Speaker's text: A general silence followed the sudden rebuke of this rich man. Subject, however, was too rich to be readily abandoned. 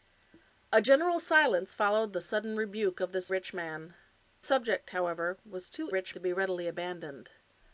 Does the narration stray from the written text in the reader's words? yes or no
no